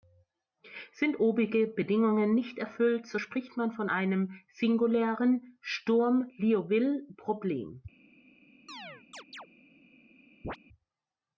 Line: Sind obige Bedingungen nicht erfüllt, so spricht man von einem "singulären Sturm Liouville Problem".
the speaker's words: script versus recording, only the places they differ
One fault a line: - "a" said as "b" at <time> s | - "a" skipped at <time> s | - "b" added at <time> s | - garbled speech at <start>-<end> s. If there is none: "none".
none